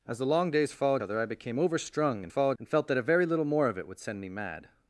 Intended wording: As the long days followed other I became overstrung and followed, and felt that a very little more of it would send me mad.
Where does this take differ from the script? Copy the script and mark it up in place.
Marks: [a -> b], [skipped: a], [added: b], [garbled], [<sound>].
As the long days followed other I became overstrung and followed, and felt that a very little more of it would send me mad.